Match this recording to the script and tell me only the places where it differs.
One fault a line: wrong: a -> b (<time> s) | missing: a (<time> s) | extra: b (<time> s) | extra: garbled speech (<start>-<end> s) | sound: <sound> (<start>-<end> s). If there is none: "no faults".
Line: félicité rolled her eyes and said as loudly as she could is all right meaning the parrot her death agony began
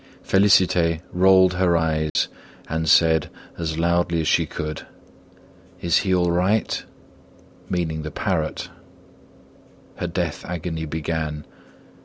sound: dropout (2.1-2.2 s)
extra: he (6.0 s)